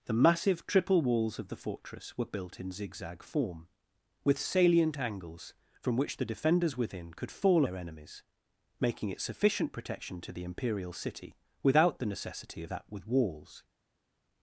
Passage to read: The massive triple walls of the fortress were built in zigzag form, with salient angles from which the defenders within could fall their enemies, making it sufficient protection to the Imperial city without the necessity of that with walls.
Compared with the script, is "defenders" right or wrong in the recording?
right